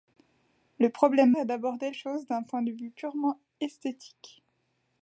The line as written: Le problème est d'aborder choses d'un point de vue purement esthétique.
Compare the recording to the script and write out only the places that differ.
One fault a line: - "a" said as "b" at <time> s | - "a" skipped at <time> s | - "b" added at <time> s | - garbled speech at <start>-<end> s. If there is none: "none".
none